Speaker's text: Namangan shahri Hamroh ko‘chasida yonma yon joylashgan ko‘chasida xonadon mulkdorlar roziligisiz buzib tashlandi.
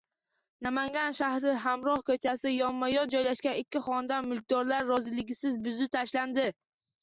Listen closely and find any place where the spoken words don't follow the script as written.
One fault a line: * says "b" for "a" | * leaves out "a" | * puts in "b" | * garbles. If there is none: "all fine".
* says "ikki" for "ko‘chasida"